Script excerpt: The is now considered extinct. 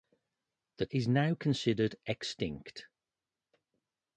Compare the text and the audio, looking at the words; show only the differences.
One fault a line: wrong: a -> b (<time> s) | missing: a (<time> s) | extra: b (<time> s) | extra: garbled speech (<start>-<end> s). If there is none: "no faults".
no faults